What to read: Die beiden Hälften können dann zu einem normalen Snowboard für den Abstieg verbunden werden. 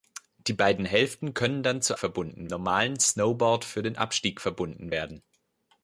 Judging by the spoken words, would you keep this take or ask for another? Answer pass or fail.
fail